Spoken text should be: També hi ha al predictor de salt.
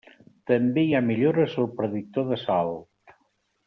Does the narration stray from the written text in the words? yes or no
yes